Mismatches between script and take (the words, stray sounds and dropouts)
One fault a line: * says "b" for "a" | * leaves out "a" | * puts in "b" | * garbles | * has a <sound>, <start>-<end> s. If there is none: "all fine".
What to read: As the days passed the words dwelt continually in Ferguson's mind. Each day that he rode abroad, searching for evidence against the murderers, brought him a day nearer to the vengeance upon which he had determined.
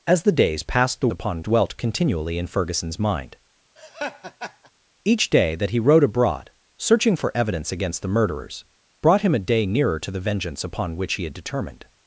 * says "upon" for "words"
* has a laugh, 3.8-4.7 s